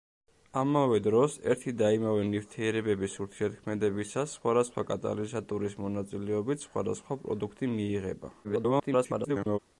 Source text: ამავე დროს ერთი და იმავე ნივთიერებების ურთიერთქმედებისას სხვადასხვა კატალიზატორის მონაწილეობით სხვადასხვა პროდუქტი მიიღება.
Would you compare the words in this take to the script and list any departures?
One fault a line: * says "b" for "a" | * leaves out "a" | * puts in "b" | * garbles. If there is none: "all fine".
* garbles